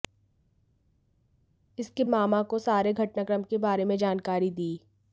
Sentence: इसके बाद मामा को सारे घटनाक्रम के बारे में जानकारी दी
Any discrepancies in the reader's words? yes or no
yes